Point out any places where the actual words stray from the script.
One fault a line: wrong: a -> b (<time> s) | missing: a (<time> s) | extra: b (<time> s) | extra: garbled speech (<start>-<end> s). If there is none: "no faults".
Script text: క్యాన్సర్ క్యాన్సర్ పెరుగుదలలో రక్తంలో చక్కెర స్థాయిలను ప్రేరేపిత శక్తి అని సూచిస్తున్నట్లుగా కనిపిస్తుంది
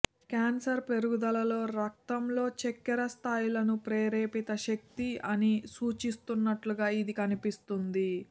missing: క్యాన్సర్ (0.8 s)
extra: ఇది (7.0 s)